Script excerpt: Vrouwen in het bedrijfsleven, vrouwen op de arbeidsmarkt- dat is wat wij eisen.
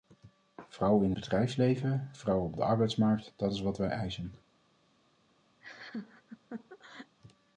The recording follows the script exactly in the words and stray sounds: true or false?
false